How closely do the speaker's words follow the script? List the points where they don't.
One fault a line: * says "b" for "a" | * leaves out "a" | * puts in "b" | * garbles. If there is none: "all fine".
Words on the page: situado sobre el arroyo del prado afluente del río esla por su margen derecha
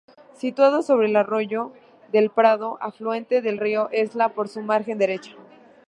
all fine